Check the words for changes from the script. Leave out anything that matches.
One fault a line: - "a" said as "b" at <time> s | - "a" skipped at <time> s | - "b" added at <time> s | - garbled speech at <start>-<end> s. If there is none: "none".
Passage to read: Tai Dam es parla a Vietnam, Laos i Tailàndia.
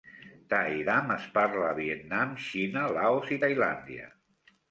- "Xina" added at 2.4 s